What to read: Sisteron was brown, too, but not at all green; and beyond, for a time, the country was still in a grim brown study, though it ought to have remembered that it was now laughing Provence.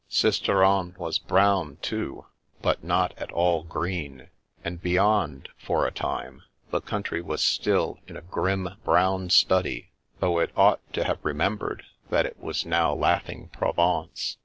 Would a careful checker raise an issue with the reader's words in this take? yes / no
no